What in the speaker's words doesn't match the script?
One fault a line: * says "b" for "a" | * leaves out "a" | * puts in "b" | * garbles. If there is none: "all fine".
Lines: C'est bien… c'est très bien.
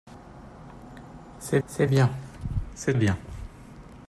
* puts in "c'est"
* leaves out "très"